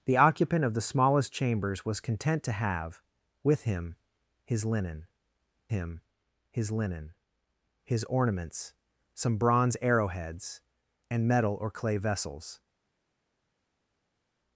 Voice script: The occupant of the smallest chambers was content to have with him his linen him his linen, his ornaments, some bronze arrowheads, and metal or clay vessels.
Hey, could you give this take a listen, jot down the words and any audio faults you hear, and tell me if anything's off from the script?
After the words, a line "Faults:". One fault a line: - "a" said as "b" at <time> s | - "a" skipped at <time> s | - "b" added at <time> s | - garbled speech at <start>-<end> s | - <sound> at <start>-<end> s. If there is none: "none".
The occupant of the smallest chambers was content to have with him his linen him his linen, his ornaments, some bronze arrowheads, and metal or clay vessels.
Faults:
none